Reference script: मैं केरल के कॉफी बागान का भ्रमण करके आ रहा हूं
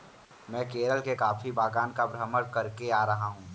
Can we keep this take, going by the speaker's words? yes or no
yes